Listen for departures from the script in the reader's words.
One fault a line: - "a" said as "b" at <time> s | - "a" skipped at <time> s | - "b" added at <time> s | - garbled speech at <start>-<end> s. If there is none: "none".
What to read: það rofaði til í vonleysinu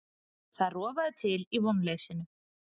none